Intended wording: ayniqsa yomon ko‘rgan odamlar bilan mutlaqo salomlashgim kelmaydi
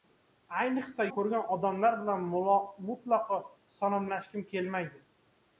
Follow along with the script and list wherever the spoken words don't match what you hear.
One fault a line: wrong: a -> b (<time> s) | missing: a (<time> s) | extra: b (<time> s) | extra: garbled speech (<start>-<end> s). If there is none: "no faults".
missing: yomon (1.1 s)